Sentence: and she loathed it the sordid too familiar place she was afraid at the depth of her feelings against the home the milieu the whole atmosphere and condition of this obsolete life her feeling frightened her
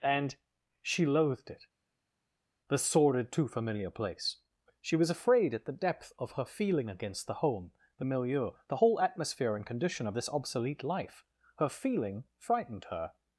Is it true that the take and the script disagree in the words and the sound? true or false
true